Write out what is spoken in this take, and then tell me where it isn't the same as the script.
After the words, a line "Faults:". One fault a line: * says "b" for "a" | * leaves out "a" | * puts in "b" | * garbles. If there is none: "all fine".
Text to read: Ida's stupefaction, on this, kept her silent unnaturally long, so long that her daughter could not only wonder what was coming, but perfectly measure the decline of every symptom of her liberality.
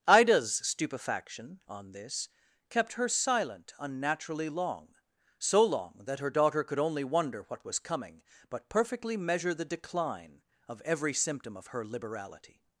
Ida's stupefaction, on this, kept her silent unnaturally long, so long that her daughter could only wonder what was coming, but perfectly measure the decline of every symptom of her liberality.
Faults:
* leaves out "not"